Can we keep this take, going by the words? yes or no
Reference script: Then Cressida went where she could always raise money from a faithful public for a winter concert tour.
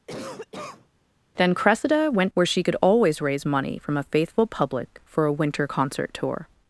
yes